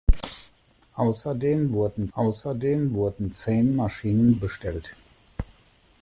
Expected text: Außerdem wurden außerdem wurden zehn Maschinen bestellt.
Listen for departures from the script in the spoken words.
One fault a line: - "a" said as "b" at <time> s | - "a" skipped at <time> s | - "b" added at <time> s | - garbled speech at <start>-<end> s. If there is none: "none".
none